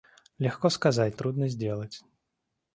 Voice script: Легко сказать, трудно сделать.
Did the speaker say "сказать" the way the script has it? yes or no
yes